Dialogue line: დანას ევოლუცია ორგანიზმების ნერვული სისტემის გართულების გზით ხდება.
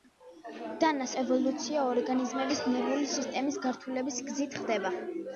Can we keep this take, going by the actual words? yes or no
yes